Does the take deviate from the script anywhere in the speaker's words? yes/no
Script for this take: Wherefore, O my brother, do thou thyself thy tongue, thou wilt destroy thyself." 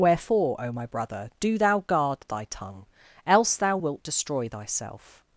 yes